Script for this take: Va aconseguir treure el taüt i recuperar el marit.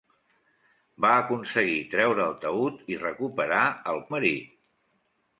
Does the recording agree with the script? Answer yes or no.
yes